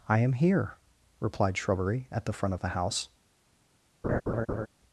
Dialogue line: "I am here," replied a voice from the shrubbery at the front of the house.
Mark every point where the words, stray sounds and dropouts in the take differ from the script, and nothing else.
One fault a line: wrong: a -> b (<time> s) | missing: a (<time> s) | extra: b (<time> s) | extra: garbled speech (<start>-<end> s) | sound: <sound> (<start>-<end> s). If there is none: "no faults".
missing: a voice from the (1.6 s)
sound: laugh (4.0-4.7 s)